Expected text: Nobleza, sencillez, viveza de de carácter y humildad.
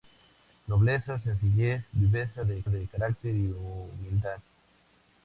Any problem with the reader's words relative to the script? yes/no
no